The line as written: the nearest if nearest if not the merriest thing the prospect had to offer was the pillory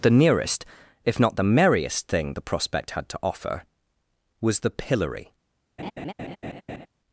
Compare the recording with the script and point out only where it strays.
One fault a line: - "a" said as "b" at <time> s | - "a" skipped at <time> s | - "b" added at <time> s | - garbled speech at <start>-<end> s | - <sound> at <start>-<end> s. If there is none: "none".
- "nearest if" skipped at 1.2 s
- laugh at 5.8-6.9 s